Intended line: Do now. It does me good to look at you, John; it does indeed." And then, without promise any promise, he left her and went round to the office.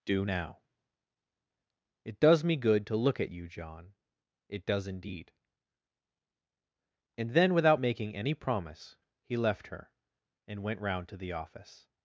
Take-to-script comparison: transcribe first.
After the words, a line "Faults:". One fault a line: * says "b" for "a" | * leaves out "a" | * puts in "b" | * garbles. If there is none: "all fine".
Do now. It does me good to look at you, John; it does indeed." And then, without making any promise, he left her and went round to the office.
Faults:
* says "making" for "promise"